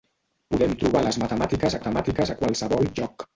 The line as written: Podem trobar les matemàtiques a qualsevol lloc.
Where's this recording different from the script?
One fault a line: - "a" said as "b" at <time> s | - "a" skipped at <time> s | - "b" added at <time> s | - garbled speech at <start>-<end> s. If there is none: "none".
- "matemàtiques" added at 1.8 s